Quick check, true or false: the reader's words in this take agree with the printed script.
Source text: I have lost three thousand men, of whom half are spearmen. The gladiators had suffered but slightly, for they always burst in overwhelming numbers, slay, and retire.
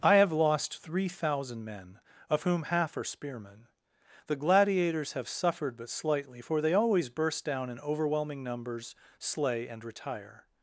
false